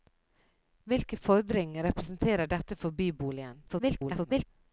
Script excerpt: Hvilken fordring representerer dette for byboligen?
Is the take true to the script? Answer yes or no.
no